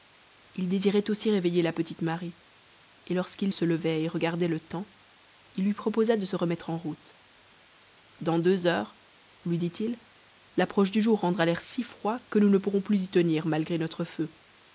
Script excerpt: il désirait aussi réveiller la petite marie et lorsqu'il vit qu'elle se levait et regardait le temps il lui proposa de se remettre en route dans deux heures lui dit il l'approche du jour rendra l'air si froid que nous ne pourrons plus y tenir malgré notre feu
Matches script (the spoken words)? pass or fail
fail